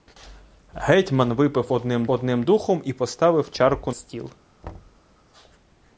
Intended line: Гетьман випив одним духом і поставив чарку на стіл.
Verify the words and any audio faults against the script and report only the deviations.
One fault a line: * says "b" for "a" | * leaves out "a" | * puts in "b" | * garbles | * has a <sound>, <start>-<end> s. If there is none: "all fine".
* puts in "одним"
* leaves out "на"
* has a thud, 4.6-5.0 s